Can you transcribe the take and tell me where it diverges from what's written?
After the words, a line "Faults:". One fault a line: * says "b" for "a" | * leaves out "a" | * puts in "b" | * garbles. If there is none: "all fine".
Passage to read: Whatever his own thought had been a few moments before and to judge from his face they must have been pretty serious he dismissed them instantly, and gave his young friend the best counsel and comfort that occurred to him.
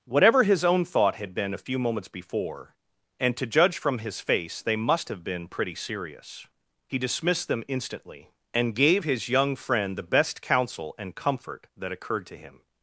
Whatever his own thought had been a few moments before and to judge from his face they must have been pretty serious he dismissed them instantly, and gave his young friend the best counsel and comfort that occurred to him.
Faults:
all fine